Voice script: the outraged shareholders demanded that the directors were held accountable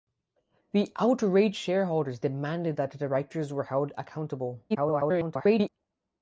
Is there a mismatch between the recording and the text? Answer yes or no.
yes